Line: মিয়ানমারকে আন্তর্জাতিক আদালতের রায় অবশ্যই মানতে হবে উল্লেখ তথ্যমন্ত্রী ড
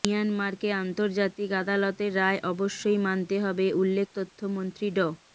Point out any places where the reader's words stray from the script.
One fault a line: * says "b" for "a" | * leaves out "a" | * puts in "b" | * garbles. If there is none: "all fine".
all fine